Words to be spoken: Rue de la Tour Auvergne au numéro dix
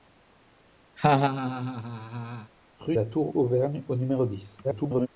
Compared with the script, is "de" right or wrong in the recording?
wrong